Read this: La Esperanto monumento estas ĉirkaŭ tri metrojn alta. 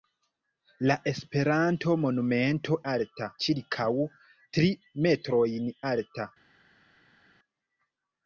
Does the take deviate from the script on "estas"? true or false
true